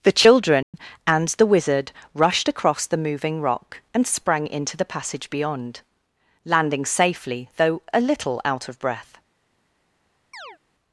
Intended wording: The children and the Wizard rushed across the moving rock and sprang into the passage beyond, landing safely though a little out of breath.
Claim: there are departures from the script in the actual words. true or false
false